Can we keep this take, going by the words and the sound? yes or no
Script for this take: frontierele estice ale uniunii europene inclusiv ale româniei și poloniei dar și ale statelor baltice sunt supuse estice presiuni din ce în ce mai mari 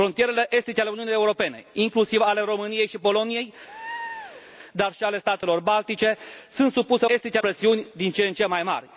no